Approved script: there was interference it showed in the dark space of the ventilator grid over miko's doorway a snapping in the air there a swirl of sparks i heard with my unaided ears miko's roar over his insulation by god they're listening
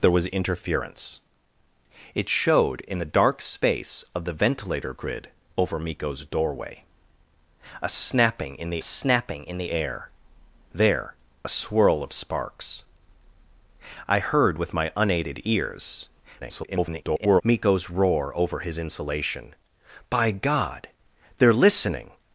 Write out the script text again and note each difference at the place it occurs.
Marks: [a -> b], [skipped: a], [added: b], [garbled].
there was interference it showed in the dark space of the ventilator grid over miko's doorway a snapping in the [added: snapping in the] air there a swirl of sparks i heard with my unaided ears [garbled] miko's roar over his insulation by god they're listening